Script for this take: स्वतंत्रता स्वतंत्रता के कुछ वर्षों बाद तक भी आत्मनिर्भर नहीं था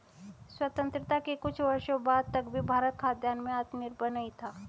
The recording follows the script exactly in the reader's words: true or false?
false